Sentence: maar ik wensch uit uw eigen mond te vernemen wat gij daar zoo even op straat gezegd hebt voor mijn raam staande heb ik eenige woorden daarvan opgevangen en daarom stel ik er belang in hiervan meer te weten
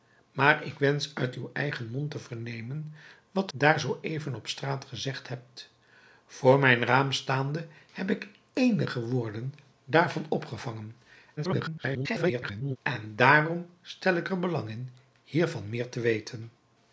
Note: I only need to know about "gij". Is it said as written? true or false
false